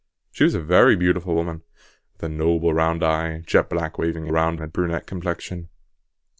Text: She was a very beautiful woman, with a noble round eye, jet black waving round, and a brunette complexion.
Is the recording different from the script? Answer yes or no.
no